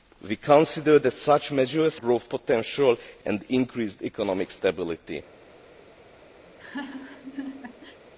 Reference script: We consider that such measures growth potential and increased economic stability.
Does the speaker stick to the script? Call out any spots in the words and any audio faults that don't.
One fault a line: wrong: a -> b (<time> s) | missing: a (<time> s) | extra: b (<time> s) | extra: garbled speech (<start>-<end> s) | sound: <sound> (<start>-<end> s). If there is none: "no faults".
sound: laugh (6.5-8.0 s)